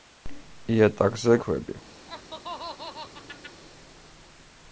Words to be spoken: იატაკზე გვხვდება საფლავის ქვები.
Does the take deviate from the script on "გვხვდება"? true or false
true